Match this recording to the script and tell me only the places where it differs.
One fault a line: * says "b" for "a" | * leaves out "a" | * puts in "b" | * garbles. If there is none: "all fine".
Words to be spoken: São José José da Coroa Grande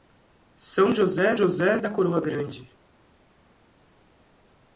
all fine